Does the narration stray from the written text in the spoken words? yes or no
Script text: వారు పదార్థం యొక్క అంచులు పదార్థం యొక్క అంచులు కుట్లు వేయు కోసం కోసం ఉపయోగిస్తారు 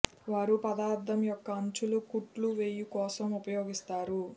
yes